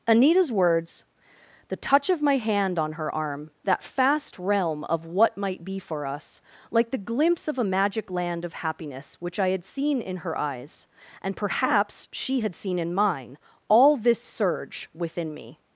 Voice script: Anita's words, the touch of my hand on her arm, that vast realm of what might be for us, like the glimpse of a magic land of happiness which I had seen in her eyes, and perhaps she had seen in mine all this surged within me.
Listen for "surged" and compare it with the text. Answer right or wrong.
wrong